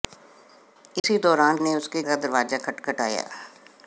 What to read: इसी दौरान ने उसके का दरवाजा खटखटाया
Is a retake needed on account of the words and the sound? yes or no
yes